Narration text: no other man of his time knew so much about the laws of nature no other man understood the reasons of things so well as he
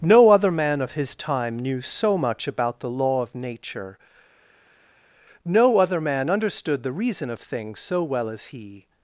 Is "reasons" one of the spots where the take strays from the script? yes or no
yes